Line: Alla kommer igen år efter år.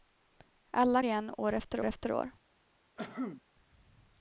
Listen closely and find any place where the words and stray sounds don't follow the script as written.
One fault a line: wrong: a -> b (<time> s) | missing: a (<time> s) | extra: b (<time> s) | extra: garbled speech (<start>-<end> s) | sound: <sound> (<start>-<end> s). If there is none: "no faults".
missing: kommer (1.0 s)
extra: efter (1.8 s)
sound: cough (3.0-3.4 s)